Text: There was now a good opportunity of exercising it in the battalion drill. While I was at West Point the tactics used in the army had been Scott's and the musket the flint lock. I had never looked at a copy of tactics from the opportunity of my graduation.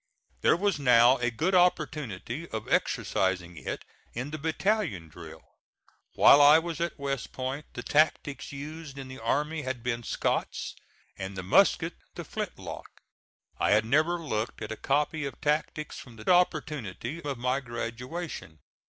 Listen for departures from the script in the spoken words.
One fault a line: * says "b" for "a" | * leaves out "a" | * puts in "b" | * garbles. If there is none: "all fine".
all fine